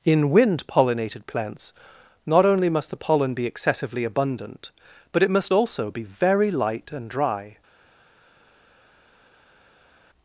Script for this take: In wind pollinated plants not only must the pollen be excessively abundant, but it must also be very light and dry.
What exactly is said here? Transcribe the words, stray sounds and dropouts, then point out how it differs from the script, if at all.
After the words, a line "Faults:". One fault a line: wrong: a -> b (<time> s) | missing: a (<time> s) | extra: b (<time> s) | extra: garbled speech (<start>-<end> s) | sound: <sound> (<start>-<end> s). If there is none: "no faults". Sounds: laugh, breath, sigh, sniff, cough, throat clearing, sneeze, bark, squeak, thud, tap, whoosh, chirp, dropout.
In wind pollinated plants not only must the pollen be excessively abundant, but it must also be very light and dry.
Faults:
no faults